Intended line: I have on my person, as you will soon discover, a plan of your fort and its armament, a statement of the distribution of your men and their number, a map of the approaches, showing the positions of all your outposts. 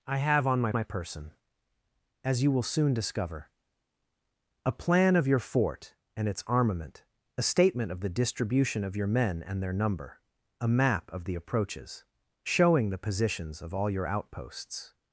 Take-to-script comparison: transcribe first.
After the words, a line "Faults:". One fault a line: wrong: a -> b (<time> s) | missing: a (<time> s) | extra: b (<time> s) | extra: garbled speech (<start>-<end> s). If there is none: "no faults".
I have on my my person, as you will soon discover, a plan of your fort and its armament, a statement of the distribution of your men and their number, a map of the approaches, showing the positions of all your outposts.
Faults:
extra: my (0.7 s)